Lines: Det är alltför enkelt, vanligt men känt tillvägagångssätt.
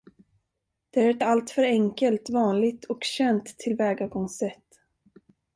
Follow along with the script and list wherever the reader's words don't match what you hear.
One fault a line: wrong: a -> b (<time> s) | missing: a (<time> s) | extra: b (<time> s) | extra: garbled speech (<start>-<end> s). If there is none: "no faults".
extra: ett (1.1 s)
wrong: men -> och (2.8 s)